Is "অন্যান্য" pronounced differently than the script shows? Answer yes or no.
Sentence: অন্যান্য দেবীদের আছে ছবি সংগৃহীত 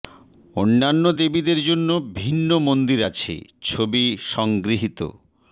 no